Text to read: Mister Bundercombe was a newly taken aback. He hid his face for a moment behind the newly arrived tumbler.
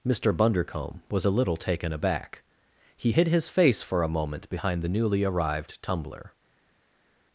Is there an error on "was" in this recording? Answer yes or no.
no